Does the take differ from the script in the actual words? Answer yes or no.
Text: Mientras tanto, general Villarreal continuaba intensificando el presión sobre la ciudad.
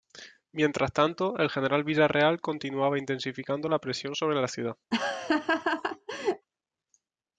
yes